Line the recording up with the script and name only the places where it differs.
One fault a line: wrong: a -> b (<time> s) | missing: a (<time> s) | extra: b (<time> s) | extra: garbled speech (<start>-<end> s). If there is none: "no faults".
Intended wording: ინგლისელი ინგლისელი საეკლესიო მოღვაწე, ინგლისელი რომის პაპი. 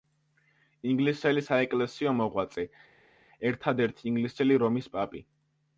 missing: ინგლისელი (1.4 s)
extra: ერთადერთი (3.5 s)